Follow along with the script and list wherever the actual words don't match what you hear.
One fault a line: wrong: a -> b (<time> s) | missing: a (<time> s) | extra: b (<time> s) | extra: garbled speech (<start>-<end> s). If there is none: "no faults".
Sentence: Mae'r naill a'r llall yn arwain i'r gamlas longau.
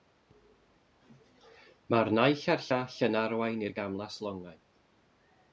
no faults